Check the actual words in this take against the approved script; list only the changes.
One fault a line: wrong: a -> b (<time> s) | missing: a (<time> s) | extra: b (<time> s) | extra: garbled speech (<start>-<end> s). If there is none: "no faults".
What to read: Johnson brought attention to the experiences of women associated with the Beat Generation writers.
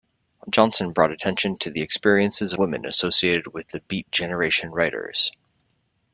missing: of (2.5 s)